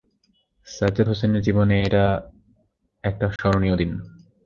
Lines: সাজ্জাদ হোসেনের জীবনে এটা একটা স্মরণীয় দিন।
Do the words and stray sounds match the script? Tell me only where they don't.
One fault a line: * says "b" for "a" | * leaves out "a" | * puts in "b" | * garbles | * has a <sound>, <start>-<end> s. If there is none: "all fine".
* has a dropout, 3.4-3.4 s